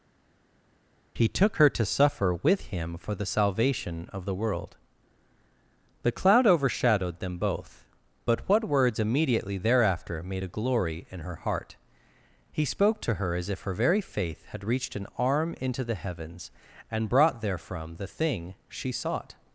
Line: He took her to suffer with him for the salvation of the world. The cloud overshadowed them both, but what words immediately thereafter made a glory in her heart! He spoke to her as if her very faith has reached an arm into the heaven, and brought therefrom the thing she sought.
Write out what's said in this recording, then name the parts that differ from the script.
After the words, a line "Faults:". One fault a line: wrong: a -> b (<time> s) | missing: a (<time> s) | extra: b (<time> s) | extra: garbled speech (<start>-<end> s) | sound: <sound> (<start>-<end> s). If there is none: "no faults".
He took her to suffer with him for the salvation of the world. The cloud overshadowed them both, but what words immediately thereafter made a glory in her heart! He spoke to her as if her very faith had reached an arm into the heavens, and brought therefrom the thing she sought.
Faults:
wrong: has -> had (14.5 s)
wrong: heaven -> heavens (15.9 s)